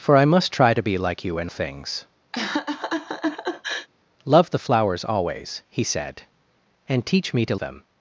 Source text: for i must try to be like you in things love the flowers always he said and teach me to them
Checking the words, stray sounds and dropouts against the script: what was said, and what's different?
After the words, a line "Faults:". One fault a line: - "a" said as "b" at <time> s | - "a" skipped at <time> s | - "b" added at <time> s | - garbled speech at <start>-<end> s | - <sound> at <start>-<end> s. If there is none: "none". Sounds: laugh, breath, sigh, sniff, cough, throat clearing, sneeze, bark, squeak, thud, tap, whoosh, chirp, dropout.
for i must try to be like you in things love the flowers always he said and teach me to them
Faults:
- laugh at 2.3-3.9 s